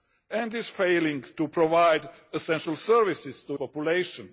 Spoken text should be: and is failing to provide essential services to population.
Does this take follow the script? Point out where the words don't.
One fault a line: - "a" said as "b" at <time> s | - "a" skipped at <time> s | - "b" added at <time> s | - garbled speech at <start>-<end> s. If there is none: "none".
none